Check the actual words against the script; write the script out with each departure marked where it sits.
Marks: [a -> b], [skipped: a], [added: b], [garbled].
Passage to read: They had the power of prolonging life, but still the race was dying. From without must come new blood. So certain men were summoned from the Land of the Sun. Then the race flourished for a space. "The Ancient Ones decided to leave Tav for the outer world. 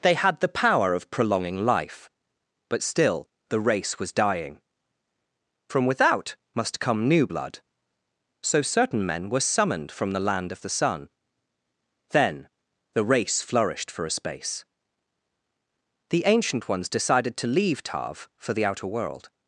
They had the power of prolonging life, but still the race was dying. From without must come new blood. So certain men were summoned from the Land of the Sun. Then the race flourished for a space. "The Ancient Ones decided to leave Tav for the outer world.